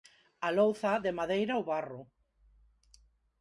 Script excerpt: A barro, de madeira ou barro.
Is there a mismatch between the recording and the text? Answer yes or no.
yes